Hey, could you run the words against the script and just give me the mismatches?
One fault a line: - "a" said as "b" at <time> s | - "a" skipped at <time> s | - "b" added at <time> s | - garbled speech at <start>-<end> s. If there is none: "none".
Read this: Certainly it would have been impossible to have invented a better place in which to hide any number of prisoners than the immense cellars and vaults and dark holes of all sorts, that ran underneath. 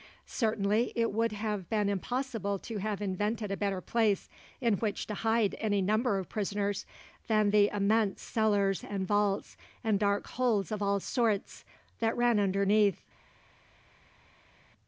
none